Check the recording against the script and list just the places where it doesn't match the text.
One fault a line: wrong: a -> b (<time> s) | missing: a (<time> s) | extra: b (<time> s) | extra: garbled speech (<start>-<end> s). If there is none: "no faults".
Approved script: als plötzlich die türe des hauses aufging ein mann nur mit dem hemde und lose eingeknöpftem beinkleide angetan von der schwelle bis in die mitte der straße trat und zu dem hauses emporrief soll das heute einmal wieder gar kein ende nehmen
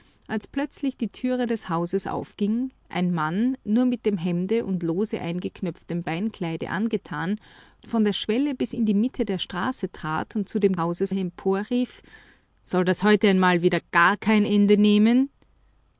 no faults